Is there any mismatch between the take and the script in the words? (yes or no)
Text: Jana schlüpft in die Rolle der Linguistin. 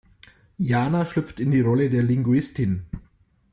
no